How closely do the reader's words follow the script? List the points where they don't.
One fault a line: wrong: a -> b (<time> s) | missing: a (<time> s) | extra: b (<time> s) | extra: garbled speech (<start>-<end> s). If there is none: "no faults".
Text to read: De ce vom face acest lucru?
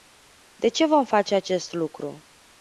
no faults